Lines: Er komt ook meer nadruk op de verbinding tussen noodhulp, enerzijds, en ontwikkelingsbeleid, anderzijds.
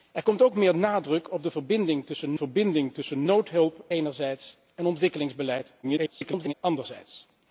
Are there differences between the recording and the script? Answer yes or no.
yes